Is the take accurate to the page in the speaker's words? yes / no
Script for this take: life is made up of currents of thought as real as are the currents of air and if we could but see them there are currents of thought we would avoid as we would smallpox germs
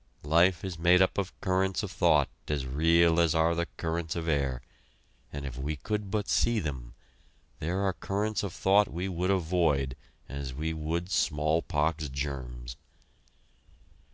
yes